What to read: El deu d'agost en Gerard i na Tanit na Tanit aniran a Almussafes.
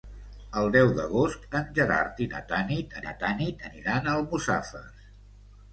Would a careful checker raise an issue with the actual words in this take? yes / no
no